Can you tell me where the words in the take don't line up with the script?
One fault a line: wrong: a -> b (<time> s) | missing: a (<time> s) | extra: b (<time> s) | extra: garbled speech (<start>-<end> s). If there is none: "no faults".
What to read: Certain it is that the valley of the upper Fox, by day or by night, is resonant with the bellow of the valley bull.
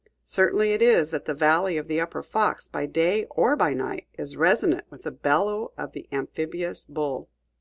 wrong: valley -> amphibious (6.1 s)